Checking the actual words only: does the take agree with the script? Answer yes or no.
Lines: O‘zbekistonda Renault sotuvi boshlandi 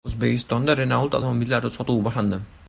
no